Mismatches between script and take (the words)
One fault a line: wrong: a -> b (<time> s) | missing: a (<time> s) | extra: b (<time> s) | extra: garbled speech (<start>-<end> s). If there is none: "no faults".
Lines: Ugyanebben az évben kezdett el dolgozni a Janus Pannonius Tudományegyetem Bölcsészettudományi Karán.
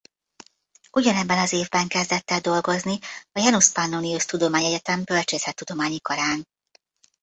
no faults